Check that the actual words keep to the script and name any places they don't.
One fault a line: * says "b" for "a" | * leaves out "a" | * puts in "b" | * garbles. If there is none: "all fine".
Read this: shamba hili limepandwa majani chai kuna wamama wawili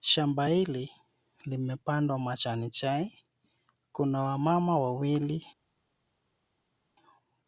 all fine